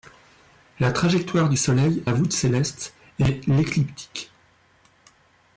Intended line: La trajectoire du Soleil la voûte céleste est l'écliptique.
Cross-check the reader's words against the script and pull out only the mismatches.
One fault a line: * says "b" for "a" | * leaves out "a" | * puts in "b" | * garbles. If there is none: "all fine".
all fine